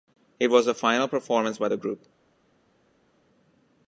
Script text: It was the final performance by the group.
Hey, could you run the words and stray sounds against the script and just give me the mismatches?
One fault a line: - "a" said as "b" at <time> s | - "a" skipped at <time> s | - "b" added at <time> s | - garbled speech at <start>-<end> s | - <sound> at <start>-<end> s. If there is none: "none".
none